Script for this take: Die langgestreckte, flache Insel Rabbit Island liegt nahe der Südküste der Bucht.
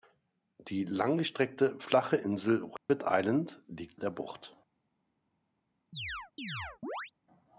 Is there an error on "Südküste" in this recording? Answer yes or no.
yes